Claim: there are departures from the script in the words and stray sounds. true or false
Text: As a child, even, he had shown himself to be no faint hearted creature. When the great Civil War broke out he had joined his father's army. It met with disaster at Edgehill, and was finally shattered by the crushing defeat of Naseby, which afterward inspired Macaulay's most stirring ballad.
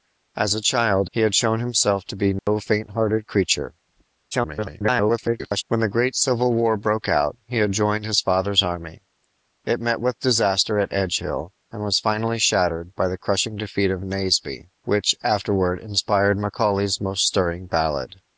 true